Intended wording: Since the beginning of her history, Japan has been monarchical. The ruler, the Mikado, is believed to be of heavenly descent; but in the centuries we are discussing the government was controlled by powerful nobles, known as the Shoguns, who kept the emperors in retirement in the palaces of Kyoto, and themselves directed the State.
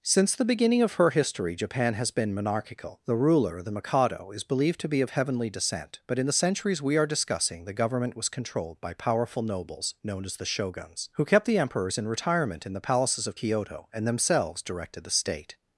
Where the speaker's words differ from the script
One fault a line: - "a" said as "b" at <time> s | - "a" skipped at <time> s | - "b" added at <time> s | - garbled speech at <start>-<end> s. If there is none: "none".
none